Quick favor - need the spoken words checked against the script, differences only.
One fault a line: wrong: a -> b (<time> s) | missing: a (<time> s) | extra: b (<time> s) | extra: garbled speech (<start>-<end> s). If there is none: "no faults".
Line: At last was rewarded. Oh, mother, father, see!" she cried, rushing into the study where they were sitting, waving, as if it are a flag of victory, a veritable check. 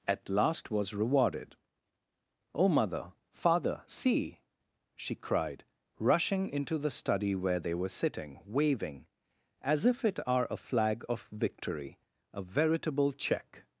no faults